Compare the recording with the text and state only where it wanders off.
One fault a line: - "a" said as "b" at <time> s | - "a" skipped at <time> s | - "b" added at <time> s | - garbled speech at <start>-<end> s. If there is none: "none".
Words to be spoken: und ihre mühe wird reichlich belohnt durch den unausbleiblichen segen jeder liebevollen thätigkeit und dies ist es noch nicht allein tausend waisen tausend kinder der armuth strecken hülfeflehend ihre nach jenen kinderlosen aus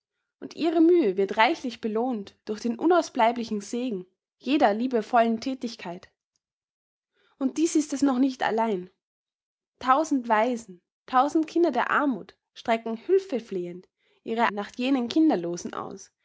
none